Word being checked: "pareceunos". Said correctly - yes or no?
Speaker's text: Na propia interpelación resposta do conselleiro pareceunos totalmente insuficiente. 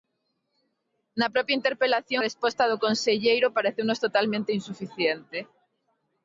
yes